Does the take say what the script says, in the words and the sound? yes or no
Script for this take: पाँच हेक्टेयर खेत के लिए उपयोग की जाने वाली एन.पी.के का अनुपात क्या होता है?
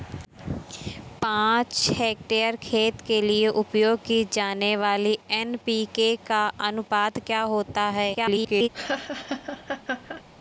no